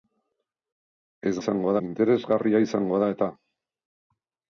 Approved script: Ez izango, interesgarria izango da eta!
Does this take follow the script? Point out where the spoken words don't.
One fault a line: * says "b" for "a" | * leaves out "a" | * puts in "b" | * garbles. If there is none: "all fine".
all fine